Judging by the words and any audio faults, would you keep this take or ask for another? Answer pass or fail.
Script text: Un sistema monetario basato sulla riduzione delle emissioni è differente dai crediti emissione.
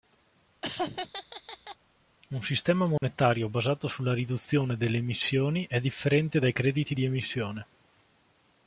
fail